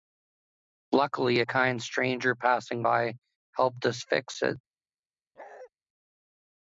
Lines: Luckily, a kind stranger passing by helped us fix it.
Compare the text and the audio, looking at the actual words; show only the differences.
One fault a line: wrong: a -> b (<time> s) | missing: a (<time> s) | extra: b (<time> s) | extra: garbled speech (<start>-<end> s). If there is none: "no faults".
no faults